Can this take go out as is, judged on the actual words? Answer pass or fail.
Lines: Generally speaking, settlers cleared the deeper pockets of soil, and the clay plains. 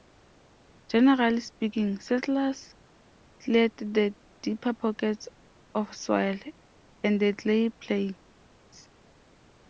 pass